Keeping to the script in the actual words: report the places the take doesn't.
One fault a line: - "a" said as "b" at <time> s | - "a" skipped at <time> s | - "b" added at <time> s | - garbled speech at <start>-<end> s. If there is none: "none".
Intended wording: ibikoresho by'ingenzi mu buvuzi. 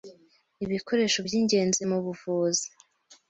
none